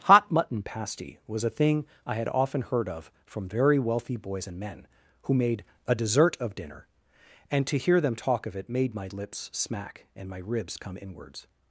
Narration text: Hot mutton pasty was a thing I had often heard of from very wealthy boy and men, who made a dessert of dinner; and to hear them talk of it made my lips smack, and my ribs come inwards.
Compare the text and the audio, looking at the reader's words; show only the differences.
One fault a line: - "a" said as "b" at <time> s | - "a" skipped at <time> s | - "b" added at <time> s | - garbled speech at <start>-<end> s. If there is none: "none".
- "boy" said as "boys" at 4.2 s